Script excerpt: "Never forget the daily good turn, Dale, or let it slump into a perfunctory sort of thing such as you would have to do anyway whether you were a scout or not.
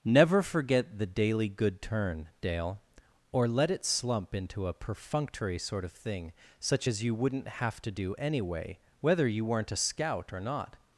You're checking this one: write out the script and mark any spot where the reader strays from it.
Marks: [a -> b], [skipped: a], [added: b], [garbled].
"Never forget the daily good turn, Dale, or let it slump into a perfunctory sort of thing such as you [would -> wouldn't] have to do anyway whether you [were -> weren't] a scout or not.